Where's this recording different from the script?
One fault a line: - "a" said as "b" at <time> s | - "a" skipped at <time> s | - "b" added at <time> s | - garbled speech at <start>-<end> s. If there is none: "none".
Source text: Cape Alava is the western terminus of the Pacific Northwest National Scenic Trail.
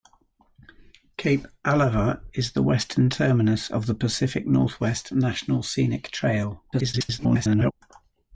- garbled speech at 6.7-7.7 s